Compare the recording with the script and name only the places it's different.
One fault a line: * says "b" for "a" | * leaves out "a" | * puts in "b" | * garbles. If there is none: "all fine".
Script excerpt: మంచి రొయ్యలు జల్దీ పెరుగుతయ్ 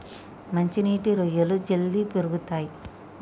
* puts in "నీటి"